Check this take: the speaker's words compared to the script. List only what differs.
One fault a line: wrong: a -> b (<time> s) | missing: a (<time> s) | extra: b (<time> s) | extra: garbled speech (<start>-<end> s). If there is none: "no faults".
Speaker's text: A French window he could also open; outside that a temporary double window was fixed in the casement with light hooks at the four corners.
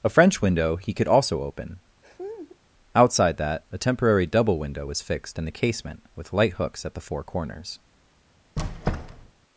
no faults